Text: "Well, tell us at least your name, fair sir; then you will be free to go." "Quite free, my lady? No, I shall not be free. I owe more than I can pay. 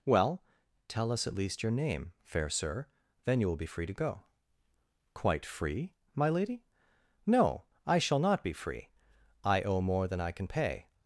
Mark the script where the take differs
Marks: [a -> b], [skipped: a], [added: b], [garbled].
"Well, tell us at least your name, fair sir; then you will be free to go." "Quite free, my lady? No, I shall not be free. I owe more than I can pay.